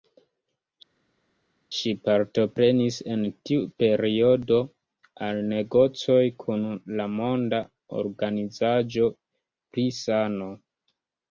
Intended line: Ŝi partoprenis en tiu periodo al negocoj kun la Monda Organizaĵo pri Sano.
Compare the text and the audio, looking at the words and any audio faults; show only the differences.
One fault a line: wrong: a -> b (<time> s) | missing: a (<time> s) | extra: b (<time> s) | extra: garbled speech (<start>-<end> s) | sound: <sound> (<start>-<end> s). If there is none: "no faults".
no faults